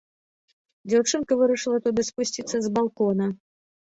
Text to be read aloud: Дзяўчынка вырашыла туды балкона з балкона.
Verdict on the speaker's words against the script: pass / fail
fail